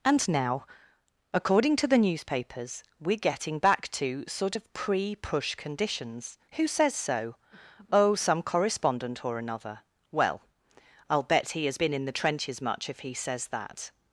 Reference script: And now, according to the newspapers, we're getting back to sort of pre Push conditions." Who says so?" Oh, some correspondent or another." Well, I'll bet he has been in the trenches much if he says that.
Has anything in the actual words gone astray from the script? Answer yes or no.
no